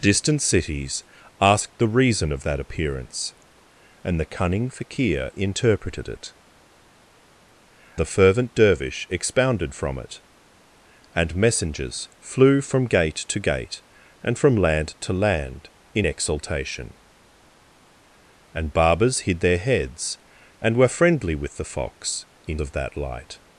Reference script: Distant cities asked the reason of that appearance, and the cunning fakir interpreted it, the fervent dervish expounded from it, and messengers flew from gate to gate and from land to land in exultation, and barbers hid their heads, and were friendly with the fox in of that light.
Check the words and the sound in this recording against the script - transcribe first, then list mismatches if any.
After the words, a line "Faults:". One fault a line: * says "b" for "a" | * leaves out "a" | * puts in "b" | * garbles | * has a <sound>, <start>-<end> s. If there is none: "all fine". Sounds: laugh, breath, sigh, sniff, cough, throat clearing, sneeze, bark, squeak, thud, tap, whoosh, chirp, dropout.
Distant cities asked the reason of that appearance, and the cunning fakir interpreted it, the fervent dervish expounded from it, and messengers flew from gate to gate and from land to land in exultation, and barbers hid their heads, and were friendly with the fox in of that light.
Faults:
all fine